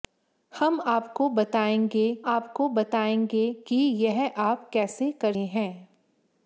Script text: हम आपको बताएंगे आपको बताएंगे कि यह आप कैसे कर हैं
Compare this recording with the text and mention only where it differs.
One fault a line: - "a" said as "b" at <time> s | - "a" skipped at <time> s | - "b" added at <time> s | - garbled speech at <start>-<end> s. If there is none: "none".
none